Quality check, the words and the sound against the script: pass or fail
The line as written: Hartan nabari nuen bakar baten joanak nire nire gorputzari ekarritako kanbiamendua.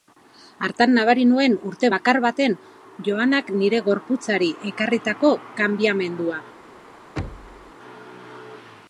fail